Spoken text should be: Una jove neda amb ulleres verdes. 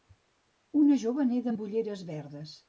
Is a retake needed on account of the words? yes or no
no